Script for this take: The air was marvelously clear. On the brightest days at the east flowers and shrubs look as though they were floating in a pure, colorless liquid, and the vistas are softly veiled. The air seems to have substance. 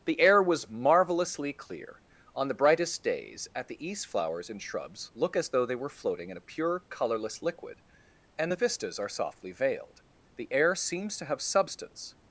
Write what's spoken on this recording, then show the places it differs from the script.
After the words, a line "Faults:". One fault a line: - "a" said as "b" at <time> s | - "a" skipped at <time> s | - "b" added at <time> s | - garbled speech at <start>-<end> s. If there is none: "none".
The air was marvelously clear. On the brightest days at the east flowers and shrubs look as though they were floating in a pure, colorless liquid, and the vistas are softly veiled. The air seems to have substance.
Faults:
none